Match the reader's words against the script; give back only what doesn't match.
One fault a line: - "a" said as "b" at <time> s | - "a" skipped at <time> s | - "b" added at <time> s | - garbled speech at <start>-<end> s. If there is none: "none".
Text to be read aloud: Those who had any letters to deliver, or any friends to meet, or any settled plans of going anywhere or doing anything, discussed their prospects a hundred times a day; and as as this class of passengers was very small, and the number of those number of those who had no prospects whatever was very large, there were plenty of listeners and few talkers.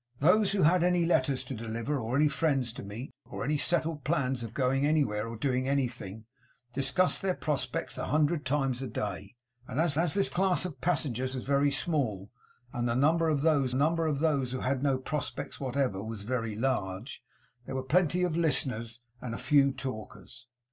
none